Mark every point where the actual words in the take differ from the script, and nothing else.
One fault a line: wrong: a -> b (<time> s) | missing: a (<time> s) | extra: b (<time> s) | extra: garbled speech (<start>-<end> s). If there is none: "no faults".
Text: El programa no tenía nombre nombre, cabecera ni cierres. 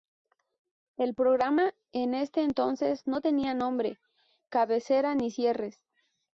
extra: en ese entonces (1.9 s)
missing: nombre (4.0 s)